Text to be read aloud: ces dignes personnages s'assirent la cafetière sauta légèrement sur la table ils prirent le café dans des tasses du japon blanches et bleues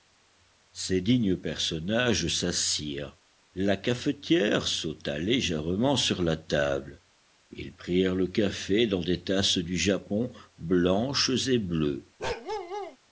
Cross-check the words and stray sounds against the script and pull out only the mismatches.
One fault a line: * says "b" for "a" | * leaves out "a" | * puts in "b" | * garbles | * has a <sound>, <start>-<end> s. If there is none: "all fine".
* has a bark, 12.2-13.0 s